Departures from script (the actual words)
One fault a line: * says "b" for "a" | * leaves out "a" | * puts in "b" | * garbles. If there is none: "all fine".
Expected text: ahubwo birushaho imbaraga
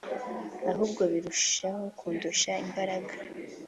* puts in "kundusha"